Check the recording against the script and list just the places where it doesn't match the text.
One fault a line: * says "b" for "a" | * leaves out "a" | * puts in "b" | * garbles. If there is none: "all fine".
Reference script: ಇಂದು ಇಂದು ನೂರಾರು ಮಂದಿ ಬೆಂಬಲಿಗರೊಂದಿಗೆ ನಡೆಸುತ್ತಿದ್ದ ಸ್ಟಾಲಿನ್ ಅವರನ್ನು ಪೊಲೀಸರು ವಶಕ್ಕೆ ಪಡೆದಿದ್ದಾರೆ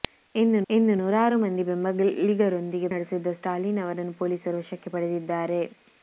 all fine